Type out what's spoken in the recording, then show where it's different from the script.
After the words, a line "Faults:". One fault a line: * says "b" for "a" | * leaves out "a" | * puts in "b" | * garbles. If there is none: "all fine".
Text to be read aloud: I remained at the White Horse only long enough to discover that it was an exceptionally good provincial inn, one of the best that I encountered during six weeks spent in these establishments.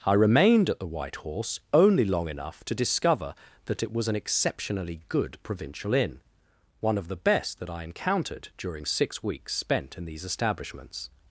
I remained at the White Horse only long enough to discover that it was an exceptionally good provincial inn, one of the best that I encountered during six weeks spent in these establishments.
Faults:
all fine